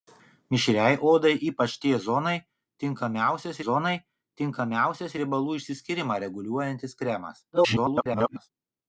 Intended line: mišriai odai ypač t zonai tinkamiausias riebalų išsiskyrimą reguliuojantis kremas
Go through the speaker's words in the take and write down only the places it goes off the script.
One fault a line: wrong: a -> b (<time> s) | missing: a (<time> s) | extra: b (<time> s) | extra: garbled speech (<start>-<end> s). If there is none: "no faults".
extra: zonai tinkamiausias (3.6 s)
extra: garbled speech (7.5-8.5 s)